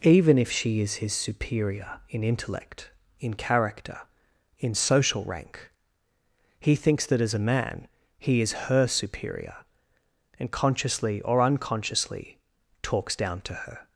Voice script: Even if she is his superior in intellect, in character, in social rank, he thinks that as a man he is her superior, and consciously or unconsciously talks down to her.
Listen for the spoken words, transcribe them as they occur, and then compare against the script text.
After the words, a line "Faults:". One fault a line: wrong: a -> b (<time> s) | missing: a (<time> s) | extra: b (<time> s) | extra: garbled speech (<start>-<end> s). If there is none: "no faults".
Even if she is his superior in intellect, in character, in social rank, he thinks that as a man he is her superior, and consciously or unconsciously talks down to her.
Faults:
no faults